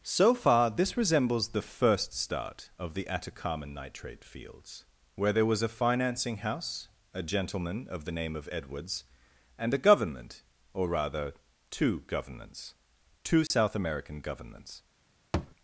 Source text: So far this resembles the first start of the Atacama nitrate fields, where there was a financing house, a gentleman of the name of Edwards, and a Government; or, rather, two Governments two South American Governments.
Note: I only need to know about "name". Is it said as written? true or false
true